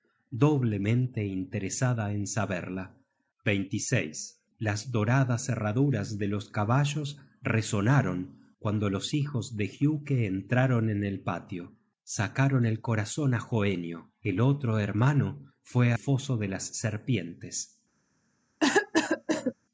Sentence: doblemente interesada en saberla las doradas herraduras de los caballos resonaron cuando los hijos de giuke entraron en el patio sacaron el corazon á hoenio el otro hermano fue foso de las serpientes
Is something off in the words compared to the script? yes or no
no